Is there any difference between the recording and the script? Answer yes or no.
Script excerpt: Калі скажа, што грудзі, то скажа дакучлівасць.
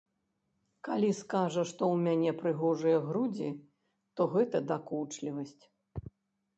yes